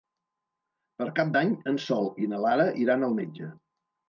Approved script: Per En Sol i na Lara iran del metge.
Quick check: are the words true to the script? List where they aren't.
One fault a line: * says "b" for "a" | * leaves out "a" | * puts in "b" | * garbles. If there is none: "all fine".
* puts in "Cap d'Any"
* says "al" for "del"